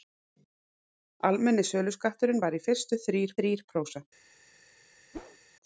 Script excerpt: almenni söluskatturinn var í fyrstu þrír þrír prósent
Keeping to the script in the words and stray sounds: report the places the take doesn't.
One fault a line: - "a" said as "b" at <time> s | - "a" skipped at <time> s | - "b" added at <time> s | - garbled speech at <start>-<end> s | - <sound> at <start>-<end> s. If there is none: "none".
- whoosh at 5.1-5.4 s